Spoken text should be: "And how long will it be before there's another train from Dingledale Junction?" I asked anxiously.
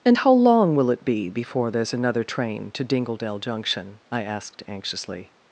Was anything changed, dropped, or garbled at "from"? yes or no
yes